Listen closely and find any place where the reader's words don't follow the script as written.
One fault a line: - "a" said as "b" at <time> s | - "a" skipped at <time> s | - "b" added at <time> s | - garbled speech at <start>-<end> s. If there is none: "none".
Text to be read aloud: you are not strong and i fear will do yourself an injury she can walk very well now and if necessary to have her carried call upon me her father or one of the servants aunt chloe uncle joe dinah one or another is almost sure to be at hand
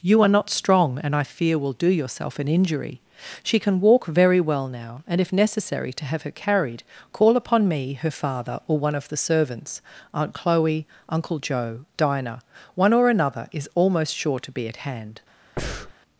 none